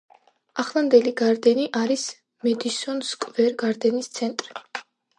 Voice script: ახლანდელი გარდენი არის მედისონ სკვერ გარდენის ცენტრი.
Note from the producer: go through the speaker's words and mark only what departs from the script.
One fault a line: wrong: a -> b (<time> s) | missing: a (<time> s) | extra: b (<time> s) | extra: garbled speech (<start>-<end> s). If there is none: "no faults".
no faults